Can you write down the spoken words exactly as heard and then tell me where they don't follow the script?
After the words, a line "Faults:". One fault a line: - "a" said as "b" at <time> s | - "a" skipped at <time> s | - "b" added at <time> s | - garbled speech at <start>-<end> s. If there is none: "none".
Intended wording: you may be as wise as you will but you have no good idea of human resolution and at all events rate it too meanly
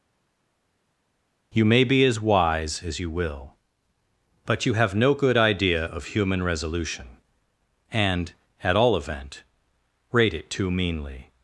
you may be as wise as you will but you have no good idea of human resolution and at all event rate it too meanly
Faults:
- "events" said as "event" at 9.0 s